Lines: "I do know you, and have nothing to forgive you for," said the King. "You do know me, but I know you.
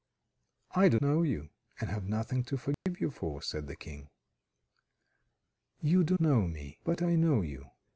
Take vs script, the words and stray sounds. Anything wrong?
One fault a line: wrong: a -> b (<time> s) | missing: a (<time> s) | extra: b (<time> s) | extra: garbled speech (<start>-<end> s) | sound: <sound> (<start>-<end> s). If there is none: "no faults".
sound: dropout (2.7-2.9 s)